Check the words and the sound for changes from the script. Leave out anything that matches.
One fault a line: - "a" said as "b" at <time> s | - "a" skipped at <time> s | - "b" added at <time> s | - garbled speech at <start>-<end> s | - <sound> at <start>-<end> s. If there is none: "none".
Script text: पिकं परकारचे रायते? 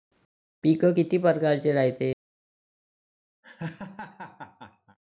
- "किती" added at 0.9 s
- laugh at 3.4-5.0 s